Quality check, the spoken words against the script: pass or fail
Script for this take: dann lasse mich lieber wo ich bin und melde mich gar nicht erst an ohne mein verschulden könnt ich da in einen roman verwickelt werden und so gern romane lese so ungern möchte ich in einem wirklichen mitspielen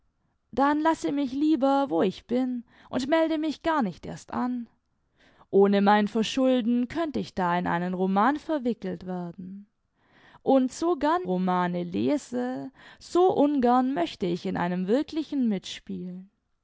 pass